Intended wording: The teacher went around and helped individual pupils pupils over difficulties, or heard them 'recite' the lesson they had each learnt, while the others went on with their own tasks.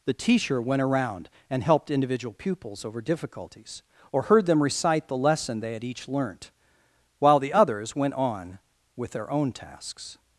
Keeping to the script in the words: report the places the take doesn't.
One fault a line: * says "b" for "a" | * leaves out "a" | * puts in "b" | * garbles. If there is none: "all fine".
* leaves out "pupils"